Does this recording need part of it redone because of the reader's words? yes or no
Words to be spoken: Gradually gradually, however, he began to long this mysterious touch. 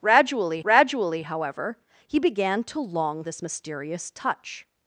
no